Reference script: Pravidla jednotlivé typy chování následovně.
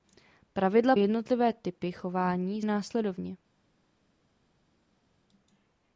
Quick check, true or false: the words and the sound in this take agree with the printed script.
true